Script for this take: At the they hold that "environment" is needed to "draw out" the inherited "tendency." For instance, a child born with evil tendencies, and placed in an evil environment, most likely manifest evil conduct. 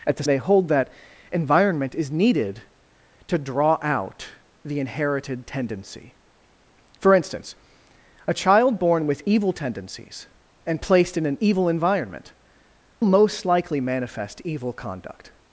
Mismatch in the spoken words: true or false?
false